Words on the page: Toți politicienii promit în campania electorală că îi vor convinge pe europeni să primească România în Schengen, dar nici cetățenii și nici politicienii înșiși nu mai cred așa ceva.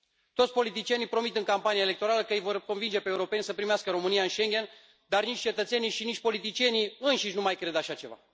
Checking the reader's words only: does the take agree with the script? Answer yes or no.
yes